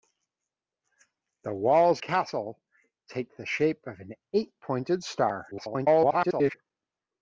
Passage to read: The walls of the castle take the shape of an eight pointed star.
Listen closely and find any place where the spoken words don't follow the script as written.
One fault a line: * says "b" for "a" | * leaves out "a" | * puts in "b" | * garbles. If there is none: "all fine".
* leaves out "of the"
* garbles